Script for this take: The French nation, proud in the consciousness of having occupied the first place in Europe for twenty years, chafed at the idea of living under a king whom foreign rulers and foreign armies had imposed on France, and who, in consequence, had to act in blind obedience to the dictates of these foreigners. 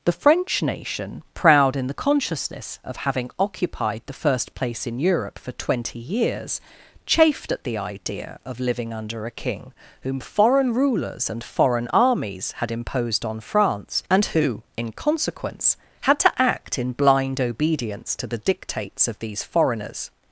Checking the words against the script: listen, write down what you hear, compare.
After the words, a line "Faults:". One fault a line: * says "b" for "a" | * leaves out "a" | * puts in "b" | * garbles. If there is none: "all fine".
The French nation, proud in the consciousness of having occupied the first place in Europe for twenty years, chafed at the idea of living under a king whom foreign rulers and foreign armies had imposed on France, and who, in consequence, had to act in blind obedience to the dictates of these foreigners.
Faults:
all fine